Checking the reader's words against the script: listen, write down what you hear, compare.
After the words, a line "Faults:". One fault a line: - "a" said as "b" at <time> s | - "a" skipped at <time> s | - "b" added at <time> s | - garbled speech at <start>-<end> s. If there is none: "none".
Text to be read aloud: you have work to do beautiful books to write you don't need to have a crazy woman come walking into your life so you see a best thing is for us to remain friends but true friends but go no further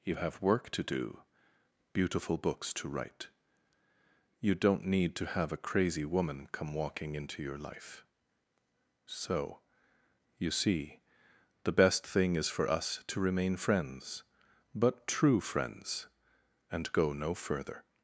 you have work to do beautiful books to write you don't need to have a crazy woman come walking into your life so you see the best thing is for us to remain friends but true friends and go no further
Faults:
- "a" said as "the" at 11.7 s
- "but" said as "and" at 16.7 s